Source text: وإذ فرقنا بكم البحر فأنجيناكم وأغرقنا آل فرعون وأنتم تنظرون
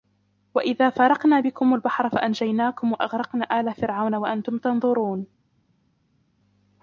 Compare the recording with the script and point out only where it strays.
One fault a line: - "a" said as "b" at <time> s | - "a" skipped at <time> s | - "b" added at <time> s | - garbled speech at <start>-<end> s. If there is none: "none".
none